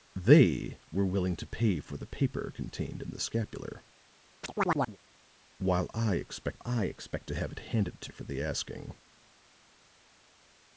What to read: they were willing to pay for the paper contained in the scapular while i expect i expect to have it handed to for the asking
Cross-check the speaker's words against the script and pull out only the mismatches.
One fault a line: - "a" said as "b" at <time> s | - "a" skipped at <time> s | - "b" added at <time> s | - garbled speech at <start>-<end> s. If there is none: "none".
none